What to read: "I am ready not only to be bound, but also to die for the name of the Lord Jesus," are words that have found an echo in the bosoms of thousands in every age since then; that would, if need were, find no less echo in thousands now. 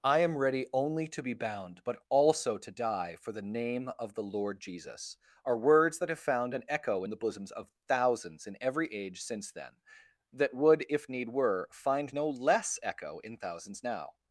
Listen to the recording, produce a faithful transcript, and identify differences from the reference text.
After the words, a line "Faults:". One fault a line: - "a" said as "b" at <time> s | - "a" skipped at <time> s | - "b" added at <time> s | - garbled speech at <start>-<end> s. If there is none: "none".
"I am ready only to be bound, but also to die for the name of the Lord Jesus," are words that have found an echo in the bosoms of thousands in every age since then; that would, if need were, find no less echo in thousands now.
Faults:
- "not" skipped at 0.7 s